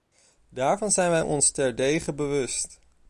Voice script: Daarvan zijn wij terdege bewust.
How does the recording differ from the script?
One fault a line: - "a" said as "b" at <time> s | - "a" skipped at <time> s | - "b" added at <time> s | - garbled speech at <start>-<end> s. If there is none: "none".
- "ons" added at 1.2 s